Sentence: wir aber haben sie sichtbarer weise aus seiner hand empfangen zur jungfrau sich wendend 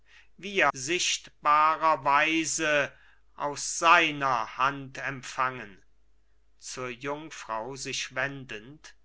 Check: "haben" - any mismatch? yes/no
yes